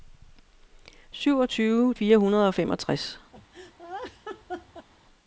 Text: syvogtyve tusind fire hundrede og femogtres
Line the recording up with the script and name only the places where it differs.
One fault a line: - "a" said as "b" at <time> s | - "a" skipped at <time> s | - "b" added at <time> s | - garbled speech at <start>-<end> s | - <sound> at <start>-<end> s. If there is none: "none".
- "tusind" skipped at 1.9 s
- laugh at 3.3-4.9 s